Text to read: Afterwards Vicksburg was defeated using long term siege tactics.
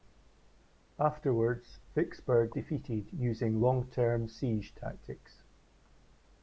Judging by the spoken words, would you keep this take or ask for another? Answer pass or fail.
fail